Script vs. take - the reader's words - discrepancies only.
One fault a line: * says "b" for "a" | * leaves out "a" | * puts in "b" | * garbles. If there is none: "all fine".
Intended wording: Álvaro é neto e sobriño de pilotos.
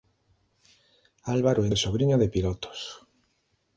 * leaves out "neto"